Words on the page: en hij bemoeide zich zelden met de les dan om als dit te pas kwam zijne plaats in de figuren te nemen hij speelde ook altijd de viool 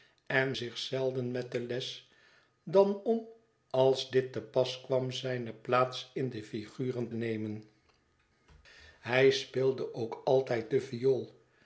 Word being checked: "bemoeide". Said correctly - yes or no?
no